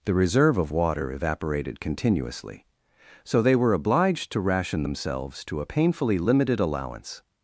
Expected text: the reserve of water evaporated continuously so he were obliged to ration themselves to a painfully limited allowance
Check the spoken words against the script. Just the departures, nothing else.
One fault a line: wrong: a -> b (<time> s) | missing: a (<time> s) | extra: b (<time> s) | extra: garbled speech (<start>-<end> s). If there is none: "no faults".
wrong: he -> they (3.4 s)